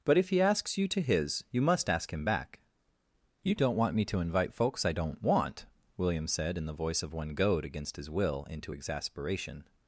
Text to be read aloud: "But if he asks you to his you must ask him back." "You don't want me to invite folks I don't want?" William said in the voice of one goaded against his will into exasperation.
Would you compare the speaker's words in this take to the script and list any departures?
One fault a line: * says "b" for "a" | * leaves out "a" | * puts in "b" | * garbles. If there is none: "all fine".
* says "goad" for "goaded"